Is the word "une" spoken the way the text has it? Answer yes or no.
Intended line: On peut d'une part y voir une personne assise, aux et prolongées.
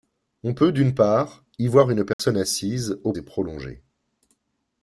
yes